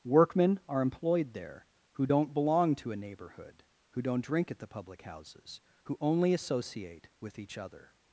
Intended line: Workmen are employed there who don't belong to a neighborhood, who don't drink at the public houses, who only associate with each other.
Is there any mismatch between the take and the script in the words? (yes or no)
no